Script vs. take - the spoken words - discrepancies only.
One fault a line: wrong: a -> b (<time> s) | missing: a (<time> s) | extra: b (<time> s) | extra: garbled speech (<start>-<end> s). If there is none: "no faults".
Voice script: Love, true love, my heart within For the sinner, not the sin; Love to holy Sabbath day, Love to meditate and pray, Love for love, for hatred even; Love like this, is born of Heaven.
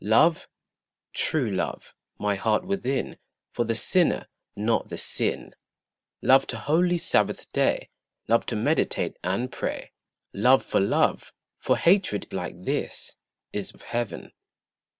missing: even Love (12.2 s)
missing: born (13.7 s)